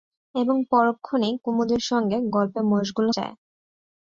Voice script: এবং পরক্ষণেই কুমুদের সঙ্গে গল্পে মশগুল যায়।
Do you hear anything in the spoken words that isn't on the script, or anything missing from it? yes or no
no